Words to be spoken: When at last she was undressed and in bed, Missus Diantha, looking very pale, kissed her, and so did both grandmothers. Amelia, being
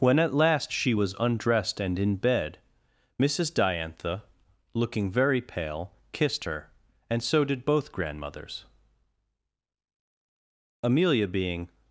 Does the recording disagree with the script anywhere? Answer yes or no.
no